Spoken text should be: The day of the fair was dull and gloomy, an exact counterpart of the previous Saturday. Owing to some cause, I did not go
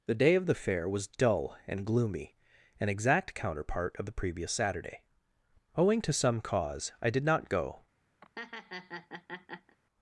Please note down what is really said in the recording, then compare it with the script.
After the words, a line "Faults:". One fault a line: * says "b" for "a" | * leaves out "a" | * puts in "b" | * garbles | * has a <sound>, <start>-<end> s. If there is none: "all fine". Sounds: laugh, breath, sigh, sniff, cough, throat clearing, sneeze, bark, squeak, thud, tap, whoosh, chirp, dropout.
The day of the fair was dull and gloomy, an exact counterpart of the previous Saturday. Owing to some cause, I did not go
Faults:
* has a laugh, 8.2-9.8 s